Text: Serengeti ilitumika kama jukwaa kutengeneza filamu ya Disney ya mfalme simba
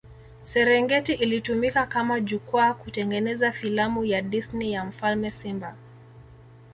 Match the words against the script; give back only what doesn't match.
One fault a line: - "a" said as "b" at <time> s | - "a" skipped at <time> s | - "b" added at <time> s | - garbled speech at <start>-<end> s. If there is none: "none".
none